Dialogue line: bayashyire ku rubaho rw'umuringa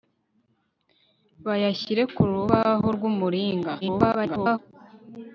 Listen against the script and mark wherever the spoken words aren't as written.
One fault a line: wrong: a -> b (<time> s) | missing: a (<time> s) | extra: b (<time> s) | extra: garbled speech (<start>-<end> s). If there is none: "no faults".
extra: garbled speech (3.8-4.6 s)